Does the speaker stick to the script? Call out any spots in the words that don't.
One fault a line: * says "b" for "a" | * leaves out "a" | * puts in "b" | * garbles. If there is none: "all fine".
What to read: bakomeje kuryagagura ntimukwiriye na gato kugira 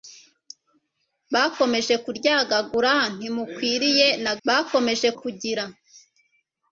* says "bakomeje" for "gato"